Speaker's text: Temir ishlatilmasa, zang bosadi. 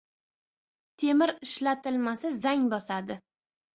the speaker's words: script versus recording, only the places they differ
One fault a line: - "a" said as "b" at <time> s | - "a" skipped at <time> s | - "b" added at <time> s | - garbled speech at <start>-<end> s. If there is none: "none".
none